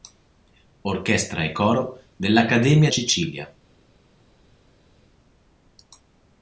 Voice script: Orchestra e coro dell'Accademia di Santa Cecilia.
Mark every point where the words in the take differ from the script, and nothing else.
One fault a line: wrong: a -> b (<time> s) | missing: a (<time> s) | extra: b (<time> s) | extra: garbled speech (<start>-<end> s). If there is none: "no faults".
missing: di Santa (2.9 s)